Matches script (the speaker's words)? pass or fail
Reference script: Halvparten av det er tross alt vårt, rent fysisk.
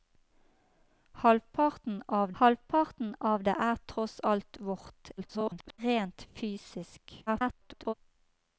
fail